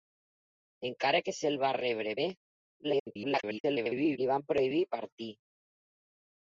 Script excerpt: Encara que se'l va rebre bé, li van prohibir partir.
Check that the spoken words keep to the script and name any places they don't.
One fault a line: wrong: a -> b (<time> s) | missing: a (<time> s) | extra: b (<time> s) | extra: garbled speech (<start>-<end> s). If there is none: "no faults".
extra: garbled speech (2.8-4.2 s)